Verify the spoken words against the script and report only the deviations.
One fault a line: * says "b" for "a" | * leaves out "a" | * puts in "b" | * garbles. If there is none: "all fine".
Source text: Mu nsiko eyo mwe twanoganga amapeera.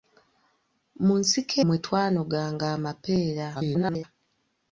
* leaves out "eyo"
* garbles